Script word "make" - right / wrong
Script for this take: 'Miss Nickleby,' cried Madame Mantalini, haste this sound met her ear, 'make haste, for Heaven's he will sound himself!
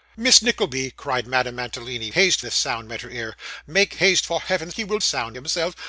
right